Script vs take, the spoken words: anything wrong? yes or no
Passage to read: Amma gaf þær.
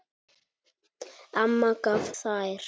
no